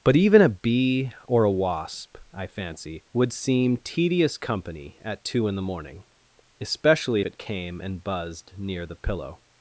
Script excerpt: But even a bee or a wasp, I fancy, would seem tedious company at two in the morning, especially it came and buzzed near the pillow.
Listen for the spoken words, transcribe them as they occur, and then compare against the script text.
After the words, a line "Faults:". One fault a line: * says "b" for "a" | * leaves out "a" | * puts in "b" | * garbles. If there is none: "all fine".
But even a bee or a wasp, I fancy, would seem tedious company at two in the morning, especially it came and buzzed near the pillow.
Faults:
all fine